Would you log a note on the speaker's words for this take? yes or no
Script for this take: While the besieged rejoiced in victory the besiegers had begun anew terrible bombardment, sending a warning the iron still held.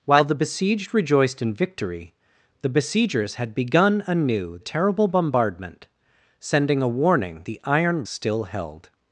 no